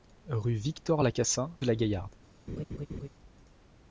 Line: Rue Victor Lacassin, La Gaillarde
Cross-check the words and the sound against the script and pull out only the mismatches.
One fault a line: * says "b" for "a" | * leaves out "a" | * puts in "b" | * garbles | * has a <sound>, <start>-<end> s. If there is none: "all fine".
* has a laugh, 2.5-3.1 s